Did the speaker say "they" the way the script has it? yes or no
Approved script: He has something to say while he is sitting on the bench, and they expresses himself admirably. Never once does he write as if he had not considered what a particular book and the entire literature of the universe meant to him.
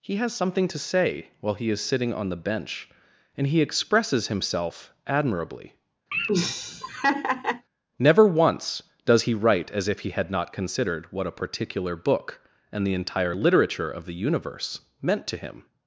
no